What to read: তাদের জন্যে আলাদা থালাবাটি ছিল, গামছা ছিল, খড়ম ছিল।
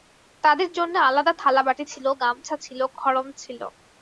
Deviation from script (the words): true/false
false